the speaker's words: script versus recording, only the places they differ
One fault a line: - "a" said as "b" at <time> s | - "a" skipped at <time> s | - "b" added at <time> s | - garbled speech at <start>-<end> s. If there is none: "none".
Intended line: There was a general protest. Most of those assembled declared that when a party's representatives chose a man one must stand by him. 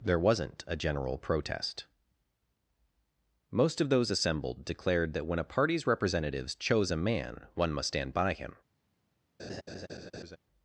- "was" said as "wasn't" at 0.2 s